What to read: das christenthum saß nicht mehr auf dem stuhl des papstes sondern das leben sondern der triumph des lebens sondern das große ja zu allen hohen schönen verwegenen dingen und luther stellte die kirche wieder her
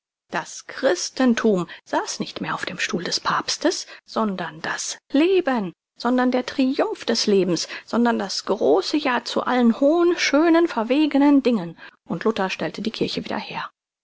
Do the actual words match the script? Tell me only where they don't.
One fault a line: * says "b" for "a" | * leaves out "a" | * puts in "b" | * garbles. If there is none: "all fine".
all fine